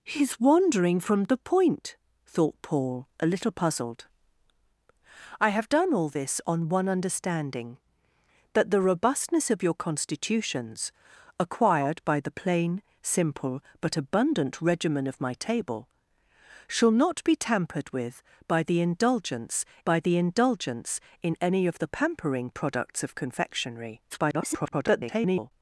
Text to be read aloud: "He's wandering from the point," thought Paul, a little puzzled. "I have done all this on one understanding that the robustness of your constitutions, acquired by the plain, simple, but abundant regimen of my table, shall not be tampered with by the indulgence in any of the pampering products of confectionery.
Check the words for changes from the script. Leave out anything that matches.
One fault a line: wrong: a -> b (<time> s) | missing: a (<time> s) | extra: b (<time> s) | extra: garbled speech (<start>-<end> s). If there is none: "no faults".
extra: by the indulgence (19.8 s)
extra: garbled speech (24.1-25.5 s)